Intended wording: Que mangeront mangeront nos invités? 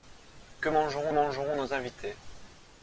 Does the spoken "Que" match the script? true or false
true